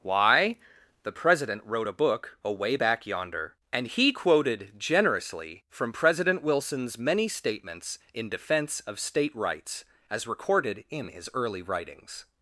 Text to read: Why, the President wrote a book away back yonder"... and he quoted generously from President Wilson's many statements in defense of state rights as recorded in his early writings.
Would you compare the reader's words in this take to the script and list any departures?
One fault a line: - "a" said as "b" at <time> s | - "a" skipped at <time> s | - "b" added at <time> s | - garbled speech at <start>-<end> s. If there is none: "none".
none